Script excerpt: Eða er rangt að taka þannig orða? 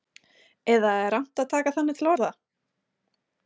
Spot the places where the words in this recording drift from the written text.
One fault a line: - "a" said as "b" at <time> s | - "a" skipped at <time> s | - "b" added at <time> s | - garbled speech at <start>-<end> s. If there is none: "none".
- "til" added at 2.0 s